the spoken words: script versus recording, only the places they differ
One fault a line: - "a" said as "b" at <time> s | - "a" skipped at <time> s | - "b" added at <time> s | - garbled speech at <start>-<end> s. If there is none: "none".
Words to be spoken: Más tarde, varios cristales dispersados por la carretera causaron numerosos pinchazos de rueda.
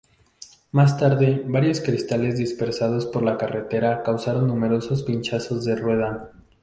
none